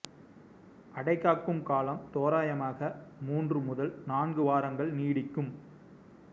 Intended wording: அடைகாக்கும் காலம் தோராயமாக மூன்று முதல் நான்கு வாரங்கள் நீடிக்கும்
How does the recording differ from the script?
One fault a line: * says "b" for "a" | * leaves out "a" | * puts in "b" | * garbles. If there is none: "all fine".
all fine